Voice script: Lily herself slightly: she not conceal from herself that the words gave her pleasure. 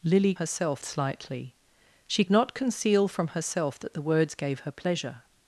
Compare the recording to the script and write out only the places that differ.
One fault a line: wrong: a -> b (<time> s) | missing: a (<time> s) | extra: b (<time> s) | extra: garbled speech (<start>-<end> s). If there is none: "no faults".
no faults